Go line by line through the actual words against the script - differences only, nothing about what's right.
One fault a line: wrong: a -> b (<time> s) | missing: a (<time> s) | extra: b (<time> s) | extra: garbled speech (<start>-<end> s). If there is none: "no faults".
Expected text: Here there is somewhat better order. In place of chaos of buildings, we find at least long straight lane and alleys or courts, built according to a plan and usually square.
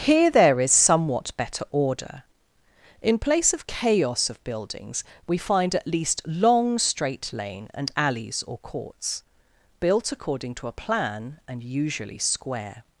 no faults